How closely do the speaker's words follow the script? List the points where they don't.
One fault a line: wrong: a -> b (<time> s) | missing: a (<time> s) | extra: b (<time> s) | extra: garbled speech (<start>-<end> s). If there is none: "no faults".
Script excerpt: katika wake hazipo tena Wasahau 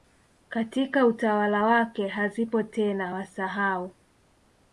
extra: utawala (1.1 s)